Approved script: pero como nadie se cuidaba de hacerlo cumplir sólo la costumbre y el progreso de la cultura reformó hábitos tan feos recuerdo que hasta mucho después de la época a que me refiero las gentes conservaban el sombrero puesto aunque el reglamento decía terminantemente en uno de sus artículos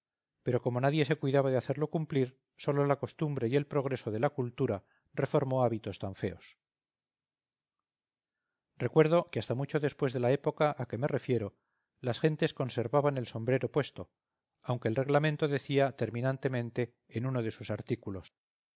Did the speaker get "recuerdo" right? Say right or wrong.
right